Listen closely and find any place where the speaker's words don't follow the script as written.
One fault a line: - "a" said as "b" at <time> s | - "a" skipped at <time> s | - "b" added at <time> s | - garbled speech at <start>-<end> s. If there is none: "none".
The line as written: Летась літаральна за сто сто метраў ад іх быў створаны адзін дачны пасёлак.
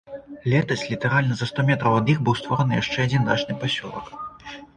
- "сто" skipped at 1.6 s
- "яшчэ" added at 2.8 s